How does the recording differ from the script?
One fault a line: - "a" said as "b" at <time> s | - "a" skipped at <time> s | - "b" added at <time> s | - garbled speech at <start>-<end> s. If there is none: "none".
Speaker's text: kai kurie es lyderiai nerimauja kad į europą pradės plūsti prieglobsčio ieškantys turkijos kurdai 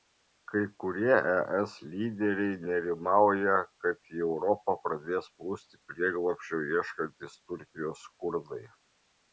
none